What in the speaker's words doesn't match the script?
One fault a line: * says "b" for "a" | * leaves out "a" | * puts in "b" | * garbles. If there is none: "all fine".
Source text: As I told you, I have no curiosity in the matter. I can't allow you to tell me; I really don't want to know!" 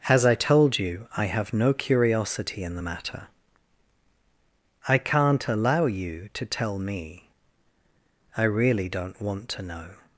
all fine